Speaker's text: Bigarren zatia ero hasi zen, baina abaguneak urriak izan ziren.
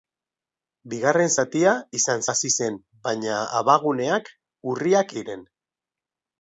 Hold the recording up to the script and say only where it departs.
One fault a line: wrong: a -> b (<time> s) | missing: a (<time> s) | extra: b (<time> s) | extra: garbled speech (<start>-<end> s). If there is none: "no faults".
wrong: ero -> izan (2.0 s)
missing: izan (5.1 s)